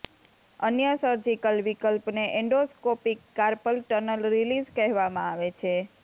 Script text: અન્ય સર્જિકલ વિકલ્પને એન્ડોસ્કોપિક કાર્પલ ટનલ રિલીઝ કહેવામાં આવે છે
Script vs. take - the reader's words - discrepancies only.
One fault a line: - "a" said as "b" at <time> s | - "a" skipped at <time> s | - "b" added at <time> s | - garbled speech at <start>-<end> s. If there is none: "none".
none